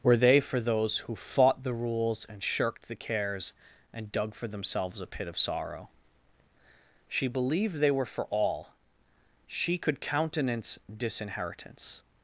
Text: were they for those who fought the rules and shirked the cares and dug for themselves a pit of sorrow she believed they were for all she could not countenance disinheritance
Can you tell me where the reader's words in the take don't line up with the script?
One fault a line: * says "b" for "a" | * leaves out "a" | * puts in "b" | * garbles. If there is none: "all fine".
* leaves out "not"